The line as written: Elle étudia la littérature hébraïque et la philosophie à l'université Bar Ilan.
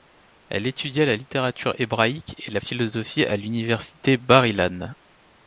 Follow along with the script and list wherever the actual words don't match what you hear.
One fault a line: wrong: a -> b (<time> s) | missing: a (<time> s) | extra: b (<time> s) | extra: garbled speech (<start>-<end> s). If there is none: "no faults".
no faults